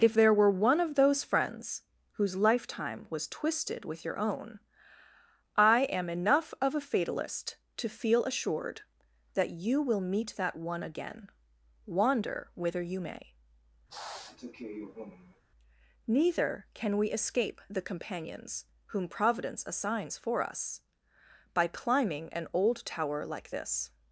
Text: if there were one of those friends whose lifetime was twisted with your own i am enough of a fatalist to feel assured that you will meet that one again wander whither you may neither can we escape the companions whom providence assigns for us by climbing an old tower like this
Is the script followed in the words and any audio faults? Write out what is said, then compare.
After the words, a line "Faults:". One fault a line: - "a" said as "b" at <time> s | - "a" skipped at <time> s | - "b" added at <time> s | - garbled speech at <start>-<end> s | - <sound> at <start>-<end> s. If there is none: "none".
if there were one of those friends whose lifetime was twisted with your own i am enough of a fatalist to feel assured that you will meet that one again wander whither you may neither can we escape the companions whom providence assigns for us by climbing an old tower like this
Faults:
- sniff at 13.9-15.4 s